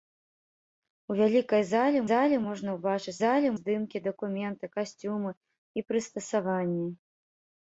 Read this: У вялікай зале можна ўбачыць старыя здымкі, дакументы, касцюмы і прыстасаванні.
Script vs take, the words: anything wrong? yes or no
yes